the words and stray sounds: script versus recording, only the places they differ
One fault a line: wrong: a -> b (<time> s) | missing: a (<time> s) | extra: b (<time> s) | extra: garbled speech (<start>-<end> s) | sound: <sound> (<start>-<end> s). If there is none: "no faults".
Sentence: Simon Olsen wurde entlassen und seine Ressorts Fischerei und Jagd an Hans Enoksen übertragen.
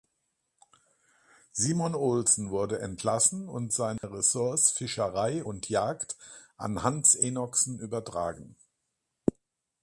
sound: dropout (4.0-4.0 s)